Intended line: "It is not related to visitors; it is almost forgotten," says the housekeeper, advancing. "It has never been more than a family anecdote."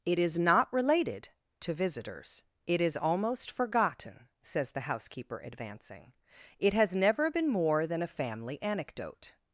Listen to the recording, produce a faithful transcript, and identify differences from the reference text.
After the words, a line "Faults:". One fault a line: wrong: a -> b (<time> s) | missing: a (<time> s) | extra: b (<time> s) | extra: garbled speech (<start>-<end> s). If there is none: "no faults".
"It is not related to visitors; it is almost forgotten," says the housekeeper, advancing. "It has never been more than a family anecdote."
Faults:
no faults